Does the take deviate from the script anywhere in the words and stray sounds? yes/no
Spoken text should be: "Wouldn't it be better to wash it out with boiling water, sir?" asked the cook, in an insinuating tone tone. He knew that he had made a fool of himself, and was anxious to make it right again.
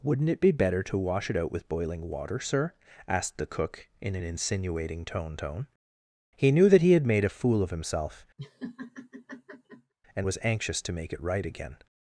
yes